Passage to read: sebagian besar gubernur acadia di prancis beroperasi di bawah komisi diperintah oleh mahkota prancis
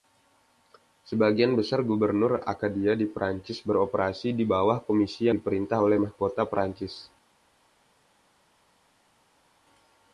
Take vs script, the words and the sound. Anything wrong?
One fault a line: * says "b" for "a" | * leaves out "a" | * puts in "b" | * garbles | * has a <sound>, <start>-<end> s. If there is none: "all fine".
all fine